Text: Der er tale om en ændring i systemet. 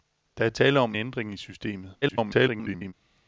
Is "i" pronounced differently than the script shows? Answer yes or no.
no